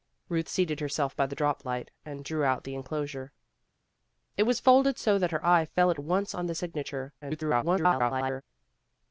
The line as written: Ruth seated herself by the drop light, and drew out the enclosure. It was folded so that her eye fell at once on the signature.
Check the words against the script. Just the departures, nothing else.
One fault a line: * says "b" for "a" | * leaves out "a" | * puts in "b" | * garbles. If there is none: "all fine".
* garbles